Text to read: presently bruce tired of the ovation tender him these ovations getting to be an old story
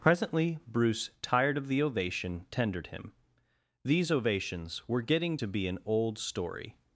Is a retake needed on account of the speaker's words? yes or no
yes